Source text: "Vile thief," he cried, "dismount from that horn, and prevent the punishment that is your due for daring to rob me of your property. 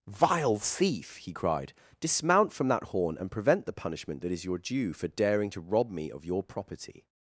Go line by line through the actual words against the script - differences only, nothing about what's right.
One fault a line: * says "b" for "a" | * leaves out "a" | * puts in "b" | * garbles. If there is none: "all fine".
all fine